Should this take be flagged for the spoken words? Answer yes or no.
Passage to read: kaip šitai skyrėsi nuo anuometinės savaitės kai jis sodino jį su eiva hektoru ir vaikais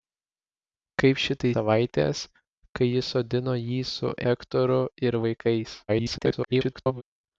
yes